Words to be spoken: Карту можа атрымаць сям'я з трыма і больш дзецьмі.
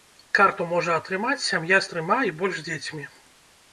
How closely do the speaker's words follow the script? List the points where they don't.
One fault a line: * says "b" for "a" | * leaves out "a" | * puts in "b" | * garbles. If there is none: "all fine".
all fine